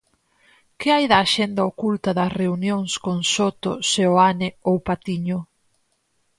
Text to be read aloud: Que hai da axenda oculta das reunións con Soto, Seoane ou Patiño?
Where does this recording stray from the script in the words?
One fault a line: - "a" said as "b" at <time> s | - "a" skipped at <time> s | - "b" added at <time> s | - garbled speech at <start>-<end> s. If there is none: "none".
none